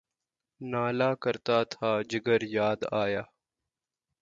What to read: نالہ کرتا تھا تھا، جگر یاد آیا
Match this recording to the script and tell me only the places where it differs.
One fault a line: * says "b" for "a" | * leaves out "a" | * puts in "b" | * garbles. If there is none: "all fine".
* leaves out "تھا"